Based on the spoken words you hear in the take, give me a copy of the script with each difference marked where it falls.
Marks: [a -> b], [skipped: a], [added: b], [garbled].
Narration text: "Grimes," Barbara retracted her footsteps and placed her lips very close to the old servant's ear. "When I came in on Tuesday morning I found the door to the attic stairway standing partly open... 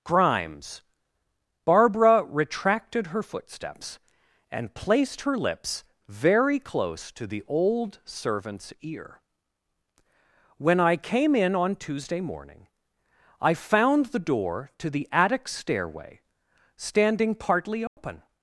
"Grimes," Barbara retracted her footsteps and placed her lips very close to the old servant's ear. "When I came in on Tuesday morning I found the door to the attic stairway standing partly open...